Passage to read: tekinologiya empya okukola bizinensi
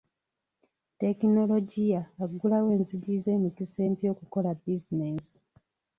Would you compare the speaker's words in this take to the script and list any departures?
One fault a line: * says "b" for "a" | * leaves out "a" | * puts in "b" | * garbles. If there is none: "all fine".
* puts in "aggulawo enzigi z'emikisa"